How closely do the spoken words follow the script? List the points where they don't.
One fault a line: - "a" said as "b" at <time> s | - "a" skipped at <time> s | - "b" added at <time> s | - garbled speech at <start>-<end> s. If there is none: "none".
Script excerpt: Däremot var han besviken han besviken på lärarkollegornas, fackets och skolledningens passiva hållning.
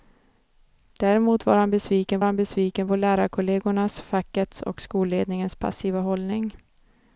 none